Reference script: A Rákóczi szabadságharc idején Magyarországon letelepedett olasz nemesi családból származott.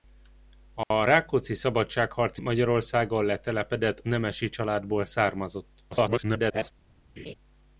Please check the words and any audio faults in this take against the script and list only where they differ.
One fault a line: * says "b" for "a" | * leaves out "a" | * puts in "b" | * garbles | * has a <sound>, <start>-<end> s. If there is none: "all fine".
* has a dropout, 0.8-0.9 s
* leaves out "idején"
* leaves out "olasz"
* garbles
* has a laugh, 7.2-7.3 s